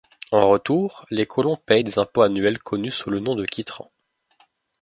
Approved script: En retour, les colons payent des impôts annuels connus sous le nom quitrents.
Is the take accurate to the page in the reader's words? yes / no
no